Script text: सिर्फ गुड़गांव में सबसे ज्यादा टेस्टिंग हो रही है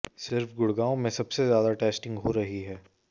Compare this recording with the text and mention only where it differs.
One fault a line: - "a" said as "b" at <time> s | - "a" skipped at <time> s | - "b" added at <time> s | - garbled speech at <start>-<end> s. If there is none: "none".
none